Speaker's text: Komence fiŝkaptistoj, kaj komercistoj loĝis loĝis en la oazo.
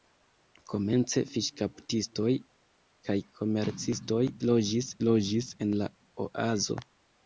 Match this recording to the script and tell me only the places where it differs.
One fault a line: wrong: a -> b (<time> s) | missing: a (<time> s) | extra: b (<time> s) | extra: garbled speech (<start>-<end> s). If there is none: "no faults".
no faults